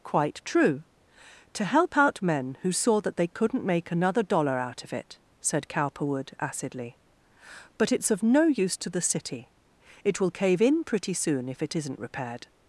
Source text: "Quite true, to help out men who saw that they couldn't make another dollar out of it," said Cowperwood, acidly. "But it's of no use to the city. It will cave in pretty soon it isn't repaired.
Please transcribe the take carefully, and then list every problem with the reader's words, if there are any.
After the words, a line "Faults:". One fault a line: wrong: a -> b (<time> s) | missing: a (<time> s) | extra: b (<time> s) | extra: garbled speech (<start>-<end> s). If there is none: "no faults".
"Quite true, to help out men who saw that they couldn't make another dollar out of it," said Cowperwood, acidly. "But it's of no use to the city. It will cave in pretty soon if it isn't repaired.
Faults:
extra: if (11.5 s)